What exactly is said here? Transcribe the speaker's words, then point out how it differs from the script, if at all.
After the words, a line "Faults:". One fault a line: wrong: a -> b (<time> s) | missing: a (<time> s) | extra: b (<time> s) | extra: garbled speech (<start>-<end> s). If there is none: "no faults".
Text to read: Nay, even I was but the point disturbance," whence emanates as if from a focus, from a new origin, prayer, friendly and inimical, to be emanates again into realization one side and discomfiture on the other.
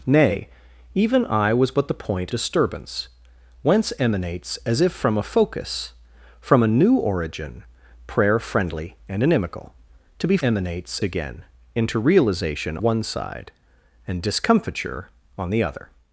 Nay, even I was but the point disturbance," whence emanates as if from a focus, from a new origin, prayer, friendly and inimical, to be emanates again into realization one side and discomfiture on the other.
Faults:
no faults